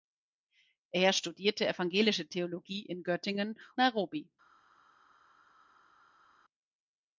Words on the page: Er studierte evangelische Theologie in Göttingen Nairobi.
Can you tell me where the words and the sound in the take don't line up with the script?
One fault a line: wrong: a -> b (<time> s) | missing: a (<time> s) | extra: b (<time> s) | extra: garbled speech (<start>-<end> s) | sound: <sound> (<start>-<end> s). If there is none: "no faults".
no faults